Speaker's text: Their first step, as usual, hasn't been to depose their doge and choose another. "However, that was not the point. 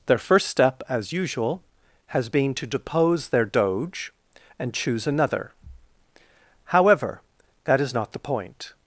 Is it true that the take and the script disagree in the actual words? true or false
true